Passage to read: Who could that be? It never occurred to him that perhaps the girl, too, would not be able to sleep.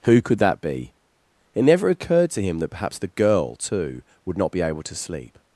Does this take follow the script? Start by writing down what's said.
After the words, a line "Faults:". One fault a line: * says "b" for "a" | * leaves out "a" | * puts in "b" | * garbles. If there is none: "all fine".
Who could that be? It never occurred to him that perhaps the girl, too, would not be able to sleep.
Faults:
all fine